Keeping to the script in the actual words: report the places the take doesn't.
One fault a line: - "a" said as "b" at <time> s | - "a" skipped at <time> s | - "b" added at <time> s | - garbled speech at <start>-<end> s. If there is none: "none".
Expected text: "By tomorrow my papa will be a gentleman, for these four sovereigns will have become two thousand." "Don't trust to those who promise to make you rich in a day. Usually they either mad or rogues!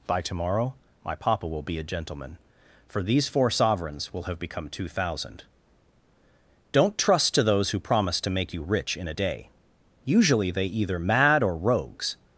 none